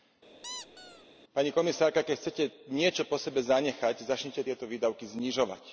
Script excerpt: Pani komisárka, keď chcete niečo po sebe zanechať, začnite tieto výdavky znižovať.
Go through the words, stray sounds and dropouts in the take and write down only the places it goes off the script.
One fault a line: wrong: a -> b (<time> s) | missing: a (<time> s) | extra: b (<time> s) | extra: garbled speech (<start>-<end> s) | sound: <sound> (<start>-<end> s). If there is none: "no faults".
sound: squeak (0.4-1.1 s)